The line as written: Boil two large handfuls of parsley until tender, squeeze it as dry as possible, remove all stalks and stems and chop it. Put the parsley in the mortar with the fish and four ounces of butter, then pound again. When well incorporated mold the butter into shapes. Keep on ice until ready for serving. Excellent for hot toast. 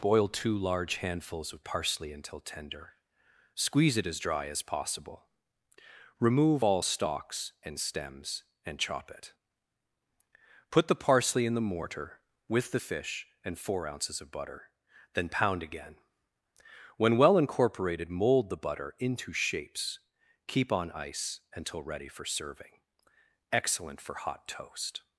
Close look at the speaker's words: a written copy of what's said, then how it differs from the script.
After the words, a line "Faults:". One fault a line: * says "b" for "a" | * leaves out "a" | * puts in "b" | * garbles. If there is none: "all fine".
Boil two large handfuls of parsley until tender, squeeze it as dry as possible, remove all stalks and stems and chop it. Put the parsley in the mortar with the fish and four ounces of butter, then pound again. When well incorporated mold the butter into shapes. Keep on ice until ready for serving. Excellent for hot toast.
Faults:
all fine